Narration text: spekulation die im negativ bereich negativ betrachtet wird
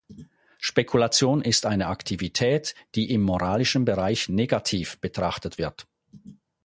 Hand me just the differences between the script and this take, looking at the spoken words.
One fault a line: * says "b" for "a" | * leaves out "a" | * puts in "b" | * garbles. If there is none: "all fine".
* puts in "ist eine aktivität"
* says "moralischen" for "negativ"